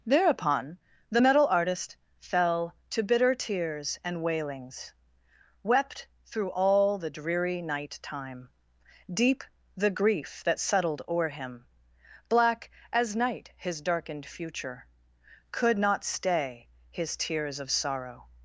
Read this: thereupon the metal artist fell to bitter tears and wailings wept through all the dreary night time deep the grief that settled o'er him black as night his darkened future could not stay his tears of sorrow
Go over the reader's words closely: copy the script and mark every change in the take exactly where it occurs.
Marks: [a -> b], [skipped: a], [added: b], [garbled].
thereupon the metal artist fell to bitter tears and wailings wept through all the dreary night time deep the grief that settled o'er him black as night his darkened future could not stay his tears of sorrow